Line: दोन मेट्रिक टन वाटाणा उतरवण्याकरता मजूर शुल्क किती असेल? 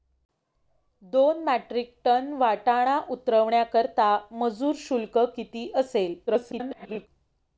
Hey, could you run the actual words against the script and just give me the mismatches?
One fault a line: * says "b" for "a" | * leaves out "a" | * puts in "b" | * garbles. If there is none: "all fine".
* garbles